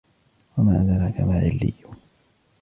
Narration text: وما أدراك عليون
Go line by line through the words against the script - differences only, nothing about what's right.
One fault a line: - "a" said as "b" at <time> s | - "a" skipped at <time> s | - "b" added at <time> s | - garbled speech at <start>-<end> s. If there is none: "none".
- "ما" added at 1.2 s